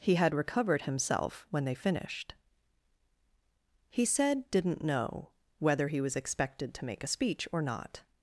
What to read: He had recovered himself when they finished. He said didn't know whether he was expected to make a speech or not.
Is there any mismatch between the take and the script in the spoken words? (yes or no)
no